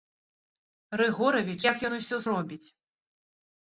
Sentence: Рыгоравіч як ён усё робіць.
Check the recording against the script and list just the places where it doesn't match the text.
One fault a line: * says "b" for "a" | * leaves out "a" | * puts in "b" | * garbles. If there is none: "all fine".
all fine